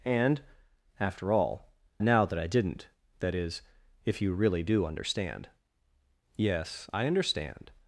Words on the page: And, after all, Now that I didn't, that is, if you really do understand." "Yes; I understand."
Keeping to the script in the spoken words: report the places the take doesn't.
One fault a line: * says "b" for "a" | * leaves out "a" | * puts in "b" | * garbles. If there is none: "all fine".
all fine